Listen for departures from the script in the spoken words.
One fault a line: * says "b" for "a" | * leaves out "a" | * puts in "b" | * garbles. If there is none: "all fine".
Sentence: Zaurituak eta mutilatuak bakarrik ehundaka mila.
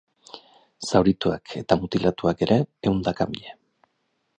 * says "ere" for "bakarrik"